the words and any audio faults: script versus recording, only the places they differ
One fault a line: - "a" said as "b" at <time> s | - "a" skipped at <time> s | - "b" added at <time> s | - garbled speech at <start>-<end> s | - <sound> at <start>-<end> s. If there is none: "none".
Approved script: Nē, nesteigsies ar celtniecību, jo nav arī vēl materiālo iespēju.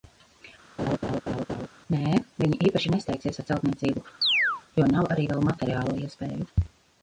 - laugh at 0.8-1.7 s
- "viņi īpaši" added at 2.4 s
- chirp at 4.2-4.6 s